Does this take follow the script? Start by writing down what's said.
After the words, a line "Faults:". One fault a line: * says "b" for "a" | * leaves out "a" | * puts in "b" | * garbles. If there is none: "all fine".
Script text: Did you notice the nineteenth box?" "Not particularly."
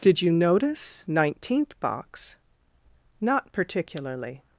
Did you notice nineteenth box?" "Not particularly."
Faults:
* leaves out "the"